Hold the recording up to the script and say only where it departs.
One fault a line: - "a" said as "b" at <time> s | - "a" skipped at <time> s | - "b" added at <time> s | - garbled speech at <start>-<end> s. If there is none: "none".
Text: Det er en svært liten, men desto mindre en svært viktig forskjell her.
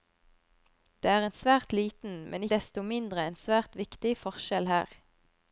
none